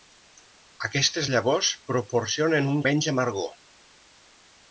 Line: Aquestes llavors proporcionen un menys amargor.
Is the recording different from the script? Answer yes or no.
no